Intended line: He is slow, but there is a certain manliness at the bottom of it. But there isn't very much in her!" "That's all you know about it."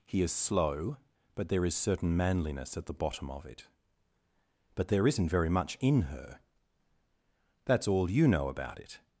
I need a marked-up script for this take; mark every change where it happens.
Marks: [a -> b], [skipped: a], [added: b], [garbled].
He is slow, but there is [skipped: a] certain manliness at the bottom of it. But there isn't very much in her!" "That's all you know about it."